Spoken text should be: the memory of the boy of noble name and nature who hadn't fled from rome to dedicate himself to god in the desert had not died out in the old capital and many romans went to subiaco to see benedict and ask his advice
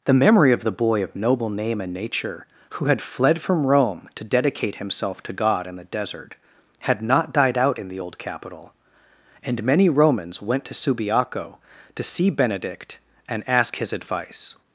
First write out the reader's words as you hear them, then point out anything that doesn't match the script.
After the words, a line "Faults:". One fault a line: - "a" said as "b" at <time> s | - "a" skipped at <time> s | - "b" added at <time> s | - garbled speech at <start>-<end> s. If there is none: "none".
the memory of the boy of noble name and nature who had fled from rome to dedicate himself to god in the desert had not died out in the old capital and many romans went to subiaco to see benedict and ask his advice
Faults:
- "hadn't" said as "had" at 2.8 s